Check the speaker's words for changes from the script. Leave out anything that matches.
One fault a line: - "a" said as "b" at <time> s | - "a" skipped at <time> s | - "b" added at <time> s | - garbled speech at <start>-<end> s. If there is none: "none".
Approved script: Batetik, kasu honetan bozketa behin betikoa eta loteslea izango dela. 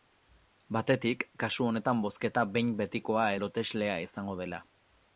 - "eta" skipped at 3.3 s